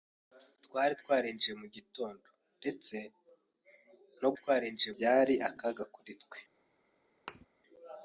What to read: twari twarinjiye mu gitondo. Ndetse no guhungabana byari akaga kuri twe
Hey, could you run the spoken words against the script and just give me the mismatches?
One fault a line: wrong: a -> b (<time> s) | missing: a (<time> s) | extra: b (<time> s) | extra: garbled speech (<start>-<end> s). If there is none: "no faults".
wrong: guhungabana -> twarinjiye (4.4 s)